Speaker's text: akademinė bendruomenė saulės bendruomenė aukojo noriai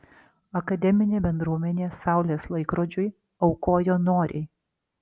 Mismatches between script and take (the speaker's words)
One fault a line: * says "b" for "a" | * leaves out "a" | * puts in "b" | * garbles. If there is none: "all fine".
* says "laikrodžiui" for "bendruomenė"